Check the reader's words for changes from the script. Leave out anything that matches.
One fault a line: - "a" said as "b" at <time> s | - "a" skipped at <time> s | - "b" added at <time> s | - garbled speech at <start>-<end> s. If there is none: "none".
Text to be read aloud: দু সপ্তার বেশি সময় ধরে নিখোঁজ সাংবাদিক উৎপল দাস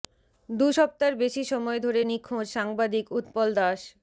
none